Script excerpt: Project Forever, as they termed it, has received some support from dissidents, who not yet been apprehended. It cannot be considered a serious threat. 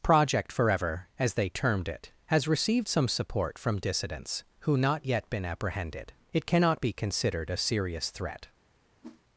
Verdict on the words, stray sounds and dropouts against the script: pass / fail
fail